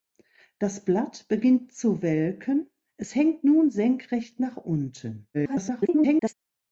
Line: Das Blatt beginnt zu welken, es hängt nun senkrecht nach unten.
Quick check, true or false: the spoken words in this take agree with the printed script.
false